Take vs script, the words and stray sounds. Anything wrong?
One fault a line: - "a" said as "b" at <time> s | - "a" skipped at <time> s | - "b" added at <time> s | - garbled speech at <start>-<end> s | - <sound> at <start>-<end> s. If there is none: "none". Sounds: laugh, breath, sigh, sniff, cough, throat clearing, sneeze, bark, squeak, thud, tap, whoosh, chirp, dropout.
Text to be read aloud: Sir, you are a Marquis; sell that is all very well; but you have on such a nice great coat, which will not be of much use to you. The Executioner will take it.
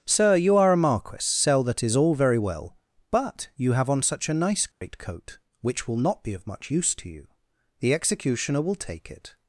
- dropout at 4.7-4.8 s